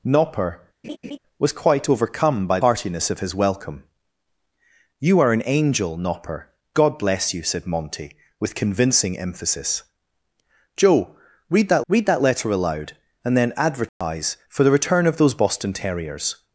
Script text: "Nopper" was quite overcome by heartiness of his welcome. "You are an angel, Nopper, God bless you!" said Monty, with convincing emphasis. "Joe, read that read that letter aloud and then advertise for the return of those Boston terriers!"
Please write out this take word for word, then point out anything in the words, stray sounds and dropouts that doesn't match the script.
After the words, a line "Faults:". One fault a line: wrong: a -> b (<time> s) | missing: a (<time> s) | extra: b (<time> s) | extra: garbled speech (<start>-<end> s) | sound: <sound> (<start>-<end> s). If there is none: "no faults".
"Nopper" was quite overcome by heartiness of his welcome. "You are an angel, Nopper, God bless you!" said Monty, with convincing emphasis. "Joe, read that read that letter aloud and then advertise for the return of those Boston terriers!"
Faults:
sound: laugh (0.8-1.2 s)
sound: dropout (13.9-14.0 s)